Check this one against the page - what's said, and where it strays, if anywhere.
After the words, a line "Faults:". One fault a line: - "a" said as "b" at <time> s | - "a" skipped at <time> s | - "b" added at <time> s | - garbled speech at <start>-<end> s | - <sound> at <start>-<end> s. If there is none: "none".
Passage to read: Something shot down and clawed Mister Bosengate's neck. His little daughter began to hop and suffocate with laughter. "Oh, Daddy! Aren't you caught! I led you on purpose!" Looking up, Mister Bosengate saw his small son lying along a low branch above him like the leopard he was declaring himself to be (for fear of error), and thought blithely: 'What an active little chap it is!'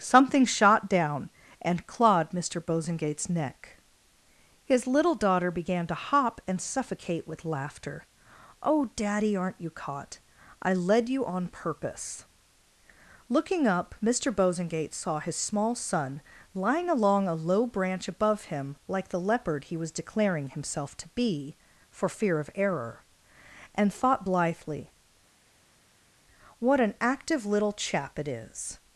Something shot down and clawed Mister Bosengate's neck. His little daughter began to hop and suffocate with laughter. "Oh, Daddy! Aren't you caught! I led you on purpose!" Looking up, Mister Bosengate saw his small son lying along a low branch above him like the leopard he was declaring himself to be (for fear of error), and thought blithely: 'What an active little chap it is!'
Faults:
none